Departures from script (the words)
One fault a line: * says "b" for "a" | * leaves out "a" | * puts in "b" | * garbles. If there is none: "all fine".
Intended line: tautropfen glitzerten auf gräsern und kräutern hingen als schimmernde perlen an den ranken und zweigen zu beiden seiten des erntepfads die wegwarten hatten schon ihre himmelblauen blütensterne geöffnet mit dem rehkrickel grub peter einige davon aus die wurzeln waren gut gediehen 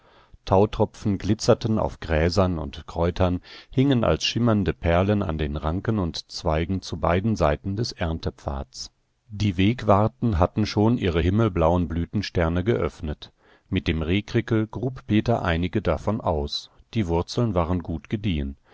all fine